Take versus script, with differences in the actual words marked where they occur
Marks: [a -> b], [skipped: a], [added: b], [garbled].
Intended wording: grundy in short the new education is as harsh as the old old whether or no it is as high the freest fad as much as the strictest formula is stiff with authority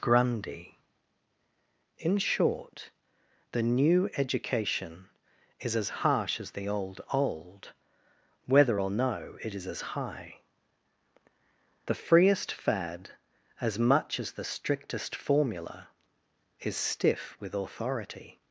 grundy in short the new education is as harsh as the old old whether or no it is as high the freest fad as much as the strictest formula is stiff with authority